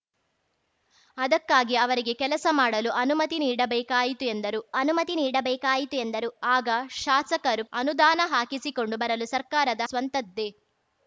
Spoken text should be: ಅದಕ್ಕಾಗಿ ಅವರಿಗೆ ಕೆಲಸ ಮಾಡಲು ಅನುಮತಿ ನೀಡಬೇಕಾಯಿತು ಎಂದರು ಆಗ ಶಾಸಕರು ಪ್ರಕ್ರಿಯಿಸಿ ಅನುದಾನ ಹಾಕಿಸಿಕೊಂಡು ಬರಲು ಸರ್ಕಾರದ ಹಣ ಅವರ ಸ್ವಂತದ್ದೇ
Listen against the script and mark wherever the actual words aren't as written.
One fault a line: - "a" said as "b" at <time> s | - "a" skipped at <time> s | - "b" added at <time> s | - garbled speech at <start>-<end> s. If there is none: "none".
- "ಅನುಮತಿ ನೀಡಬೇಕಾಯಿತು ಎಂದರು" added at 4.7 s
- "ಪ್ರಕ್ರಿಯಿಸಿ" skipped at 7.6 s
- "ಹಣ ಅವರ" skipped at 9.8 s